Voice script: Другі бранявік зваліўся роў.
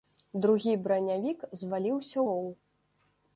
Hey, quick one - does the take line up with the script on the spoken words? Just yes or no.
yes